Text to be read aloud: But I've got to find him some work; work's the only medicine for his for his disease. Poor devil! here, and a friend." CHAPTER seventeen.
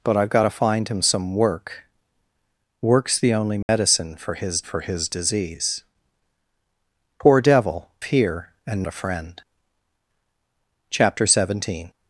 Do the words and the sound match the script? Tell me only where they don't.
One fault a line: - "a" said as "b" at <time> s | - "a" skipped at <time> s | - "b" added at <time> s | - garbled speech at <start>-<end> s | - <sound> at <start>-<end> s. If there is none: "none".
- dropout at 3.6-3.7 s